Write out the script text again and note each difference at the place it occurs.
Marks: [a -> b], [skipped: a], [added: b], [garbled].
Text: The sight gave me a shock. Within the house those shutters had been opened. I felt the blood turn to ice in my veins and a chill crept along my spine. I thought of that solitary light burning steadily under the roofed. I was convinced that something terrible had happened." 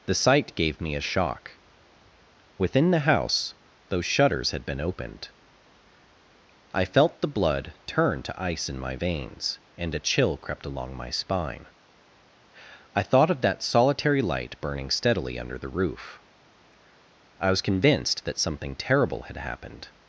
The sight gave me a shock. Within the house those shutters had been opened. I felt the blood turn to ice in my veins and a chill crept along my spine. I thought of that solitary light burning steadily under the [roofed. -> roof] I was convinced that something terrible had happened."